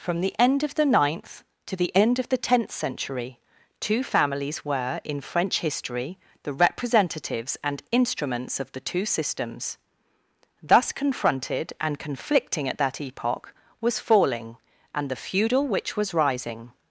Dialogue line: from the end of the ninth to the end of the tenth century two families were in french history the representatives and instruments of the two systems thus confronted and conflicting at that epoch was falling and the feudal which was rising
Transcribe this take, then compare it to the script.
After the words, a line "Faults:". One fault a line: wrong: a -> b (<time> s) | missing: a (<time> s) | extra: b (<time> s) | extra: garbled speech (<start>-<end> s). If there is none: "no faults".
from the end of the ninth to the end of the tenth century two families were in french history the representatives and instruments of the two systems thus confronted and conflicting at that epoch was falling and the feudal which was rising
Faults:
no faults